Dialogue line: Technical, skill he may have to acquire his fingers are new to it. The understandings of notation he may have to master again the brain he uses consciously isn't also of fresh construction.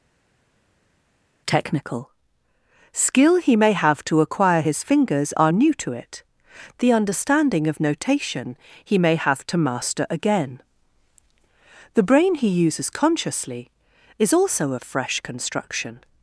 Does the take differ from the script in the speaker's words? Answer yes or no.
yes